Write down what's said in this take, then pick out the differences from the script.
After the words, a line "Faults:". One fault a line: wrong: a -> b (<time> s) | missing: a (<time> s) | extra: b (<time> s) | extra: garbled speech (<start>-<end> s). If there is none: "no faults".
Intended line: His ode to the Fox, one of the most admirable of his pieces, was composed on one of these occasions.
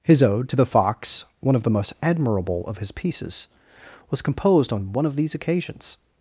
His ode to the Fox, one of the most admirable of his pieces, was composed on one of these occasions.
Faults:
no faults